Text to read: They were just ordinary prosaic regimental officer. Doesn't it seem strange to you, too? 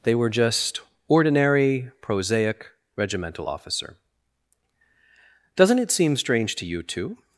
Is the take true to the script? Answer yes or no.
yes